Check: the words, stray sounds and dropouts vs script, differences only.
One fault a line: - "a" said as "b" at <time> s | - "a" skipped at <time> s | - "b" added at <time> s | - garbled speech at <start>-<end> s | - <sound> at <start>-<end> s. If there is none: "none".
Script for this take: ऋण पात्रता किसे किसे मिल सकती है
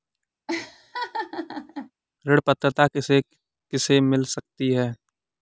- laugh at 0.5-1.9 s